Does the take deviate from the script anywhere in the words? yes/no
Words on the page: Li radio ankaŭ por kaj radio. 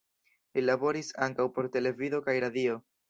yes